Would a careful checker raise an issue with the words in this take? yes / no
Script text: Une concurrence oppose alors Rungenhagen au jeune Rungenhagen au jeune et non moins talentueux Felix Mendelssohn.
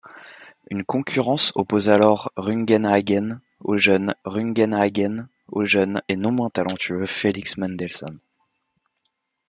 no